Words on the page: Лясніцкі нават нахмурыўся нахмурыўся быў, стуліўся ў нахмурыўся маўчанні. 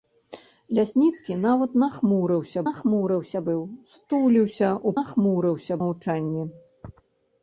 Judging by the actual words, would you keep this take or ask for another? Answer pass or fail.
pass